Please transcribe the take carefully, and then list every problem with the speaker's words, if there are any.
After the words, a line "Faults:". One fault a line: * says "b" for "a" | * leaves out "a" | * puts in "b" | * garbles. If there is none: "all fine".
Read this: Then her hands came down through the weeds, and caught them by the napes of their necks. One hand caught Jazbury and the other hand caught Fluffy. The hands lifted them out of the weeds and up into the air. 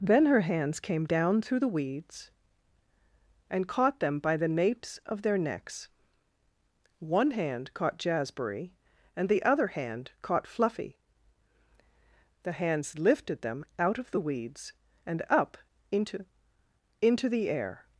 Then her hands came down through the weeds, and caught them by the napes of their necks. One hand caught Jazbury and the other hand caught Fluffy. The hands lifted them out of the weeds and up into into the air.
Faults:
* puts in "into"